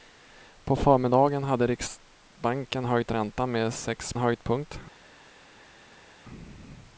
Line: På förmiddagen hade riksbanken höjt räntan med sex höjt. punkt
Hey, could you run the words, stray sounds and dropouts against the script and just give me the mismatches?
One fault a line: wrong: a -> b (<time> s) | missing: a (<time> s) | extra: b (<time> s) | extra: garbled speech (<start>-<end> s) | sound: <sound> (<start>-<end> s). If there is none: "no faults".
no faults